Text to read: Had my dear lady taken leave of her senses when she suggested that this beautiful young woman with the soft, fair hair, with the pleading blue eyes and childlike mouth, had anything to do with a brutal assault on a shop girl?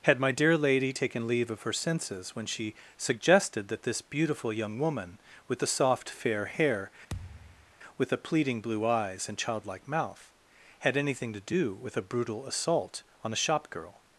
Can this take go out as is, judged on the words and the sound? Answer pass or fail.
fail